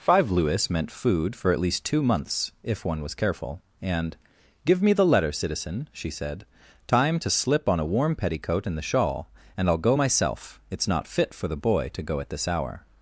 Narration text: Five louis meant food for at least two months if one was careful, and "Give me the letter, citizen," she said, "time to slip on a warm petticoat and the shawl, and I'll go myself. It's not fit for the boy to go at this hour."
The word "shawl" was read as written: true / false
true